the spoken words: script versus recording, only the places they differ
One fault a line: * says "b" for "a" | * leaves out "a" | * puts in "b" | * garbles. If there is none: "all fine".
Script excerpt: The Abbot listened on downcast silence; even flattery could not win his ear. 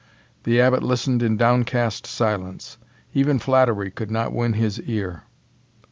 * says "in" for "on"